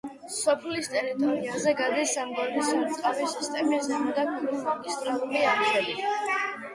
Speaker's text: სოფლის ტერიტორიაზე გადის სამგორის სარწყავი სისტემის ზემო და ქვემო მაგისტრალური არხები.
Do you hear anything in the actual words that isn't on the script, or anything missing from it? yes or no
no